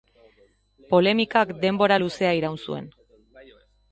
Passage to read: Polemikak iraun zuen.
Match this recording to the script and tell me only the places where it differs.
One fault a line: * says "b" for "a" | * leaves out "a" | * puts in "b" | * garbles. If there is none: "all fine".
* puts in "denbora luzea"